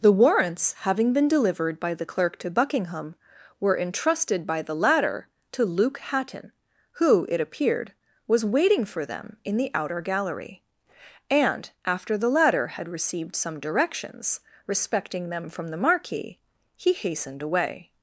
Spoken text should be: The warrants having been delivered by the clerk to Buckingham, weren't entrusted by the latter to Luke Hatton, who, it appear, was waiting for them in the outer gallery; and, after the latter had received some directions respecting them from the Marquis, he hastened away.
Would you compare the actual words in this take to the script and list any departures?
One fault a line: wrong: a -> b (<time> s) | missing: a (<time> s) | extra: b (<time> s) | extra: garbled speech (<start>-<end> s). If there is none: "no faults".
wrong: weren't -> were (3.6 s)
wrong: appear -> appeared (7.4 s)